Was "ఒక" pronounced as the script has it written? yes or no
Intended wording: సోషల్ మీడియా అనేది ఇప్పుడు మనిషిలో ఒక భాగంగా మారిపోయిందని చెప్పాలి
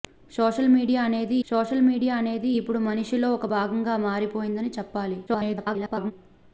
yes